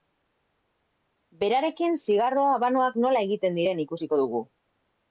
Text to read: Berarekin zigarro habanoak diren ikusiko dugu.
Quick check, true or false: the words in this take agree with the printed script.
false